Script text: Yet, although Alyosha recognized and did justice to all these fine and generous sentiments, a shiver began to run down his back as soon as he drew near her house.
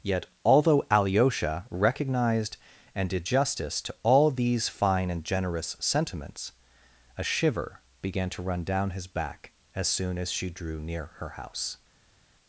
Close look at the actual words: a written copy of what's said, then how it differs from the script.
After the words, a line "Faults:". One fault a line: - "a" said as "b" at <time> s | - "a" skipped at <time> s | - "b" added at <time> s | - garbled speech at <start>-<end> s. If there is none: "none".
Yet, although Alyosha recognized and did justice to all these fine and generous sentiments, a shiver began to run down his back as soon as she drew near her house.
Faults:
- "he" said as "she" at 10.3 s